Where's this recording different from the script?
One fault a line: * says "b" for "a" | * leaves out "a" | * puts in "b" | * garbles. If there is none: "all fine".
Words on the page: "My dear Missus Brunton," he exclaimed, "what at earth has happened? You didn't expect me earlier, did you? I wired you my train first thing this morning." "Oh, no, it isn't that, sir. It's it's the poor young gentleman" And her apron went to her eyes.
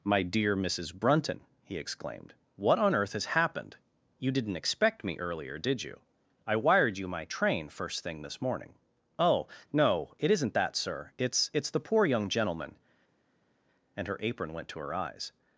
* says "on" for "at"